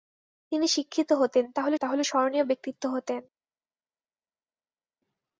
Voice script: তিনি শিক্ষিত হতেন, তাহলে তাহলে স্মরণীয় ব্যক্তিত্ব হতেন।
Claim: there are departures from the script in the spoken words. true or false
false